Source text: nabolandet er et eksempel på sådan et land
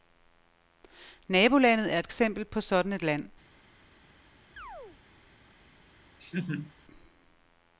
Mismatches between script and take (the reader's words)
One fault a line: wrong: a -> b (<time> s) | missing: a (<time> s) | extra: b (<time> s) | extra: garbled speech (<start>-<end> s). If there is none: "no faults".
no faults